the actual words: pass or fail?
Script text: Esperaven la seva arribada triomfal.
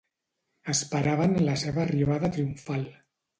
pass